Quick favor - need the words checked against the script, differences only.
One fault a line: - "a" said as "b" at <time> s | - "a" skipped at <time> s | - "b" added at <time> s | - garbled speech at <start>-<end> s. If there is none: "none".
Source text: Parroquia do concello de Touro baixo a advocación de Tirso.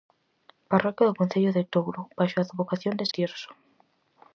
none